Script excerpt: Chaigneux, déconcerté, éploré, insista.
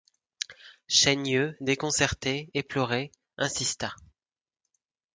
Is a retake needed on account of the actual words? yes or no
no